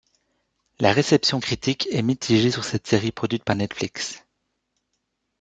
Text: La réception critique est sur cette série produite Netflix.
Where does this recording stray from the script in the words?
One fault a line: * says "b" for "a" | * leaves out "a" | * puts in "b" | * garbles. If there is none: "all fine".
* puts in "mitigée"
* puts in "par"